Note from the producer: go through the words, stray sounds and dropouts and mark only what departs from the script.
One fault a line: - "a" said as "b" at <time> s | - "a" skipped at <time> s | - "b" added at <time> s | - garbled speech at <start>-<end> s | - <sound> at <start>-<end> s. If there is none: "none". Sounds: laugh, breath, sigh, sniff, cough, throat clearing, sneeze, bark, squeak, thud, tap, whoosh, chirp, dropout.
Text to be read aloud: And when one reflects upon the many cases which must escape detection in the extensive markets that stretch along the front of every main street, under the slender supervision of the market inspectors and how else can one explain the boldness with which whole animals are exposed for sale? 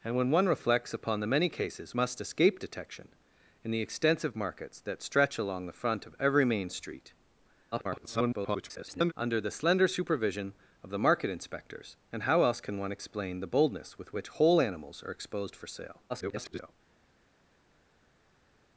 - "which" skipped at 1.9 s
- garbled speech at 7.7-9.1 s
- garbled speech at 16.1-16.7 s